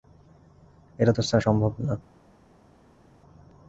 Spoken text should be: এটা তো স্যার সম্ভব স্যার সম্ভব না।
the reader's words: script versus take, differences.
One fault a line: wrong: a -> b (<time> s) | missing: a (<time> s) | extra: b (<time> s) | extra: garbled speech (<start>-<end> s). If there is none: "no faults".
missing: স্যার সম্ভব (1.7 s)